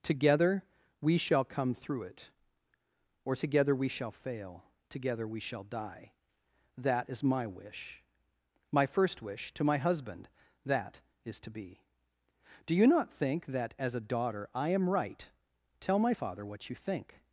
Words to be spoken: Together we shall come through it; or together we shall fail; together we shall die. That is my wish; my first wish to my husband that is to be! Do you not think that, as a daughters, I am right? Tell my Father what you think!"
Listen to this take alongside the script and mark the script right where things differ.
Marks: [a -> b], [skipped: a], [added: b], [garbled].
Together we shall come through it; or together we shall fail; together we shall die. That is my wish; my first wish to my husband that is to be! Do you not think that, as a [daughters, -> daughter] I am right? Tell my Father what you think!"